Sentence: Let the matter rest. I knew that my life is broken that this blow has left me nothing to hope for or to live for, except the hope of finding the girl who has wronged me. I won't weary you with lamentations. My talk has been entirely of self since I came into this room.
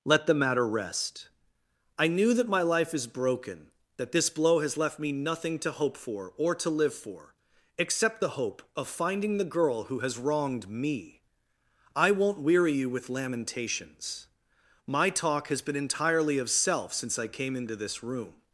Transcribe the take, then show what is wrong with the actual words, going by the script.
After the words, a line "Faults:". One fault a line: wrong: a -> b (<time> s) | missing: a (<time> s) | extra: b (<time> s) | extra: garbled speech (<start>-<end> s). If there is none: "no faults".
Let the matter rest. I knew that my life is broken that this blow has left me nothing to hope for or to live for, except the hope of finding the girl who has wronged me. I won't weary you with lamentations. My talk has been entirely of self since I came into this room.
Faults:
no faults